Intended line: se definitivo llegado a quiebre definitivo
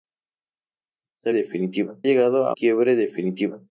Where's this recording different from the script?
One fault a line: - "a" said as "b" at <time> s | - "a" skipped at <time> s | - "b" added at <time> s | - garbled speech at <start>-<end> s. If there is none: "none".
none